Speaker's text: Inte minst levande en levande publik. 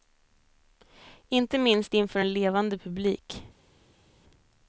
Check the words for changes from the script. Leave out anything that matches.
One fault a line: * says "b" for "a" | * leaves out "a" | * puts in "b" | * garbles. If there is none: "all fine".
* says "inför" for "levande"